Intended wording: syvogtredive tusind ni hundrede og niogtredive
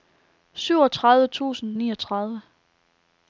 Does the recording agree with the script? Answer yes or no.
no